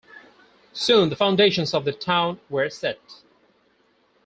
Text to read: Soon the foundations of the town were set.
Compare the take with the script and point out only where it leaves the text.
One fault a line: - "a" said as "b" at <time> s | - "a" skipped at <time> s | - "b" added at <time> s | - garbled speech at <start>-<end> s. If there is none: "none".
none